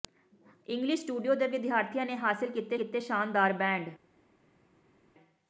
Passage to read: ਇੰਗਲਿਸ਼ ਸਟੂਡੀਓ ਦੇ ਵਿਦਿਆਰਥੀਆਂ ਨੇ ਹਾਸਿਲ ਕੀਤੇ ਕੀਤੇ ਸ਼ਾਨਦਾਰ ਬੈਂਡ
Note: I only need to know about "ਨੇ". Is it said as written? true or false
true